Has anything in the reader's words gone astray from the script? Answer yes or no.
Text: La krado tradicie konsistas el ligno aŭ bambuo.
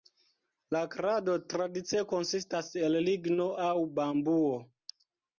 no